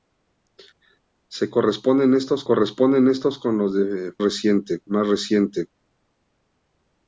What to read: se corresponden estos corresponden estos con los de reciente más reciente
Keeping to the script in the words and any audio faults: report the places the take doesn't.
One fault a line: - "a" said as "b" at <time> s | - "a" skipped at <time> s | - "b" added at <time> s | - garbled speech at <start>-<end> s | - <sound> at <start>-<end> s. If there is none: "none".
none